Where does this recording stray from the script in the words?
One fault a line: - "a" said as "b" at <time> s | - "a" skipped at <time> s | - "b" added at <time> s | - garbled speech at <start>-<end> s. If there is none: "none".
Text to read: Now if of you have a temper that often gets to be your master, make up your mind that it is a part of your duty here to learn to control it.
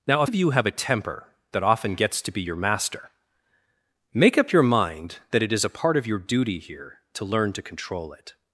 none